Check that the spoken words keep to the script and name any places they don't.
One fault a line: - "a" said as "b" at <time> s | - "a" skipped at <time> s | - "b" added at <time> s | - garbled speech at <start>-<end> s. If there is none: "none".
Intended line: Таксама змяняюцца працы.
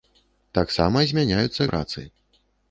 none